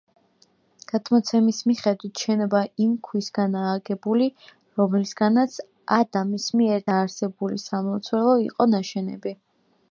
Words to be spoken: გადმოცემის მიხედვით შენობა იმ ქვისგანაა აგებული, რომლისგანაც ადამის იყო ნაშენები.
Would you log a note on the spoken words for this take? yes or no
yes